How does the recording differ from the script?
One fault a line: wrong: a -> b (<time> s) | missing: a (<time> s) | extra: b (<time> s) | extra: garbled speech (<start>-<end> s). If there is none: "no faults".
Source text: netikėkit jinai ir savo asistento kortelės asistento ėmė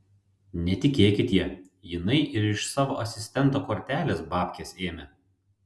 extra: ja (1.4 s)
extra: iš (2.5 s)
wrong: asistento -> babkes (4.4 s)